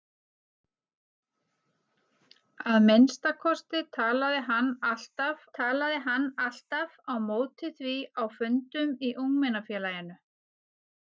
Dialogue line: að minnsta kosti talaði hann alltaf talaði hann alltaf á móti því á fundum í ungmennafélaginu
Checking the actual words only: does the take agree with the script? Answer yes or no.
yes